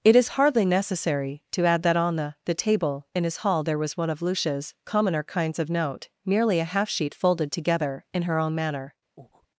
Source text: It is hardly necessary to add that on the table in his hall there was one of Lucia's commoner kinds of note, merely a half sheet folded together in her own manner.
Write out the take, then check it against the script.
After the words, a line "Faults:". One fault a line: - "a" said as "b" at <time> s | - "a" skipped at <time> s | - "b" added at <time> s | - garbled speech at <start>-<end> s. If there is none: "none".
It is hardly necessary to add that on the the table in his hall there was one of Lucia's commoner kinds of note, merely a half sheet folded together in her own manner.
Faults:
- "the" added at 2.5 s